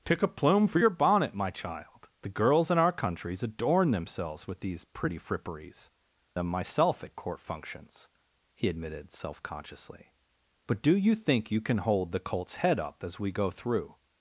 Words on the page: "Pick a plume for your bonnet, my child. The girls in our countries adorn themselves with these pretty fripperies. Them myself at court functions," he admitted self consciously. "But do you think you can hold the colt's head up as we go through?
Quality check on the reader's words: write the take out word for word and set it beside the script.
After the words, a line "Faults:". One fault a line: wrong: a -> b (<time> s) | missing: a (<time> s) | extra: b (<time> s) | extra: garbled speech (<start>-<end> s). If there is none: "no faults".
"Pick a plume for your bonnet, my child. The girls in our countries adorn themselves with these pretty fripperies. Them myself at court functions," he admitted self consciously. "But do you think you can hold the colt's head up as we go through?
Faults:
no faults